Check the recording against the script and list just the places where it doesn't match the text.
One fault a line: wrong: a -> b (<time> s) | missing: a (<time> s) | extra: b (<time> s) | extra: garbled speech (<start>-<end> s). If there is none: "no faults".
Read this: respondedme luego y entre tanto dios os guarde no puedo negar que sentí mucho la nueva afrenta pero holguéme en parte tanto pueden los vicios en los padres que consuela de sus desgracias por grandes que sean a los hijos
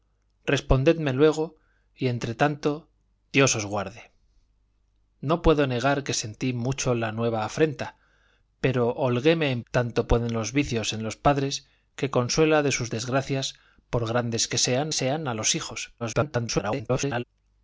missing: parte (9.6 s)
extra: sean (14.9 s)
extra: garbled speech (16.0-17.2 s)